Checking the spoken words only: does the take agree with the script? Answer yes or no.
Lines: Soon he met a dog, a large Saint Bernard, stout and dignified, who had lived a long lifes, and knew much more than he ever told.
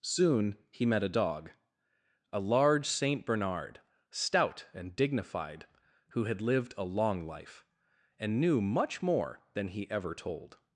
no